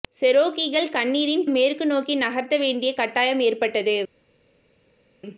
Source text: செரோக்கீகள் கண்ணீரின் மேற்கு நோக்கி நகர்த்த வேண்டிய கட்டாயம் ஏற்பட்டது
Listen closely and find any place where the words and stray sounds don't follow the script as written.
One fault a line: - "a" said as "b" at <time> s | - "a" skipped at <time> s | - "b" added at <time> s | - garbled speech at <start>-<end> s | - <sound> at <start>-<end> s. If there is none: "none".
none